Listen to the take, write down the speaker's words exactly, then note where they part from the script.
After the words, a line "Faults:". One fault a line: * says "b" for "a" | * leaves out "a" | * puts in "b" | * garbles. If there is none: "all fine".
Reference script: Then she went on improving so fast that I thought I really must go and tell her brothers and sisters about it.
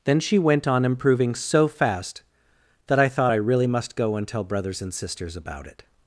Then she went on improving so fast that I thought I really must go and tell brothers and sisters about it.
Faults:
* leaves out "her"